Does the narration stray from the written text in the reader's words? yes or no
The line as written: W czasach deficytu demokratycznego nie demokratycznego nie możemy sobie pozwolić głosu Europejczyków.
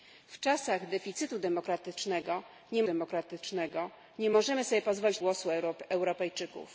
no